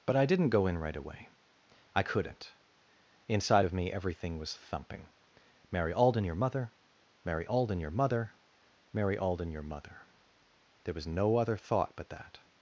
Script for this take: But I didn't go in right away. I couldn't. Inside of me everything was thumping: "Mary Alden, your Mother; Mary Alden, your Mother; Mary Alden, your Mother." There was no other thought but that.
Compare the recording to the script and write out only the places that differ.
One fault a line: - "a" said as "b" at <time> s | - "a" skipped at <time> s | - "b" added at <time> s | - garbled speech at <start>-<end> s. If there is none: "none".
none